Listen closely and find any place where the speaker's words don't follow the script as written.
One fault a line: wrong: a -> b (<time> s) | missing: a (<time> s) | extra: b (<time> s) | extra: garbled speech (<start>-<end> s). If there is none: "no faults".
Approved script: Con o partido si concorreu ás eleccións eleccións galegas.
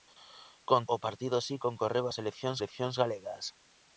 no faults